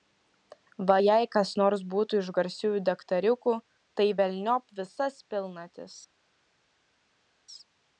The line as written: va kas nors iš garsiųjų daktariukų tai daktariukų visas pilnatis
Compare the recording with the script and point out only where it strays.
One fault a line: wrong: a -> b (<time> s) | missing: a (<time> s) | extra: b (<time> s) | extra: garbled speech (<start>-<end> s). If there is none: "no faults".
extra: jei (1.0 s)
extra: būtų (1.9 s)
wrong: daktariukų -> velniop (4.2 s)